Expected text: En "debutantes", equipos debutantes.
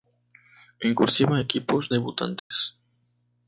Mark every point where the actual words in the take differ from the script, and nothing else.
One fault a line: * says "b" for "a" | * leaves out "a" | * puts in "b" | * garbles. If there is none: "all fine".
* says "cursiva" for "debutantes"